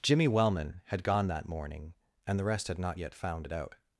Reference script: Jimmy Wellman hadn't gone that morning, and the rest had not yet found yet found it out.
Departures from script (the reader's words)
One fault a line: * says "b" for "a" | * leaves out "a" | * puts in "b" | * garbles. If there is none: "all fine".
* says "had" for "hadn't"
* leaves out "yet found"